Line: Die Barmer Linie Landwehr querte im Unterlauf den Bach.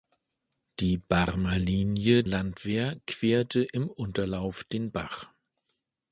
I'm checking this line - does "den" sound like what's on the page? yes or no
yes